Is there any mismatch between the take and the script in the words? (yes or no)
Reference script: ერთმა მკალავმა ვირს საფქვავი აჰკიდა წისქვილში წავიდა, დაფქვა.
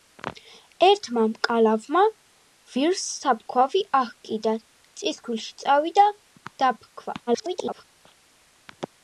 yes